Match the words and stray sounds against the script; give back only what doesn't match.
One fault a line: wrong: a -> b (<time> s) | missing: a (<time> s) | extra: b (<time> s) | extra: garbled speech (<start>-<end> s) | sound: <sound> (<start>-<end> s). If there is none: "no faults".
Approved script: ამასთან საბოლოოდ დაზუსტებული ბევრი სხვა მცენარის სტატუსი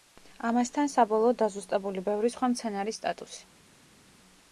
no faults